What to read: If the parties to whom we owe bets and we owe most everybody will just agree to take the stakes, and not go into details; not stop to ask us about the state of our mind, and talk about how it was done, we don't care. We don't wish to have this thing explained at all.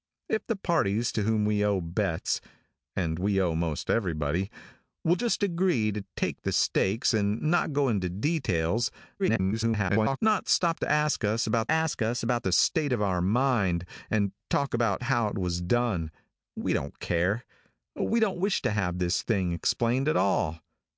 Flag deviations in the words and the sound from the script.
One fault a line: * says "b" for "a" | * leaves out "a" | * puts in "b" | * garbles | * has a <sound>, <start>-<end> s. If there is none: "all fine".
* garbles
* puts in "ask us about"